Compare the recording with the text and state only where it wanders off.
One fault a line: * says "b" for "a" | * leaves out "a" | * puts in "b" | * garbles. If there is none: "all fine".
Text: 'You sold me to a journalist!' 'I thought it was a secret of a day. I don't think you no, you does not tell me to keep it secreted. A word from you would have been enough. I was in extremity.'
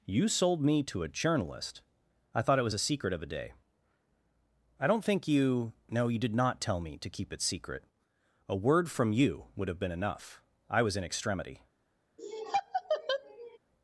* says "did" for "does"
* says "secret" for "secreted"